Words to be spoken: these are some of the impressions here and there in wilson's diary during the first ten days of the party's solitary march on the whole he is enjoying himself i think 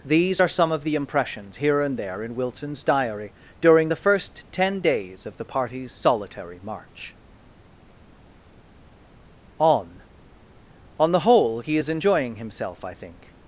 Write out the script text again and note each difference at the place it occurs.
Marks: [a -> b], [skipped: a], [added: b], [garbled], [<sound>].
these are some of the impressions here and there in wilson's diary during the first ten days of the party's solitary march on [added: on] the whole he is enjoying himself i think